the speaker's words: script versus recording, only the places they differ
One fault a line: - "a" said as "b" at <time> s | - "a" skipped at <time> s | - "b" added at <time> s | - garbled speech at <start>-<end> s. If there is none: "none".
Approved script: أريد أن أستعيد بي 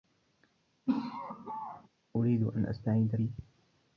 none